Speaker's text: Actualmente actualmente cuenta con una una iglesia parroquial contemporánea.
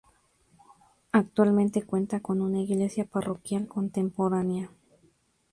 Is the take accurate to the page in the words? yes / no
no